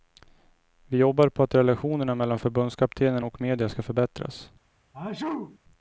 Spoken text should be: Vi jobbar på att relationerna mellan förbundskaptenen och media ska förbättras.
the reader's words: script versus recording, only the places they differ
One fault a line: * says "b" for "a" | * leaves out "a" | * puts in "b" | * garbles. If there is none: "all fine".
all fine